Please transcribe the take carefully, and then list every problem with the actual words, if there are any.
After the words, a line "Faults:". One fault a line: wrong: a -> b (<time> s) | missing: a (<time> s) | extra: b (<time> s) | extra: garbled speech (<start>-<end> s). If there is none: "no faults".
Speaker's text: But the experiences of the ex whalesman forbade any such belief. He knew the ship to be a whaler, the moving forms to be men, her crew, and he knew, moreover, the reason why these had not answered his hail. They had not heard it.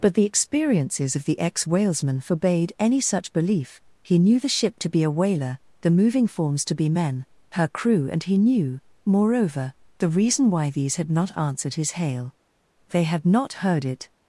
But the experiences of the ex whalesman forbade any such belief. He knew the ship to be a whaler, the moving forms to be men, her crew, and he knew, moreover, the reason why these had not answered his hail. They had not heard it.
Faults:
no faults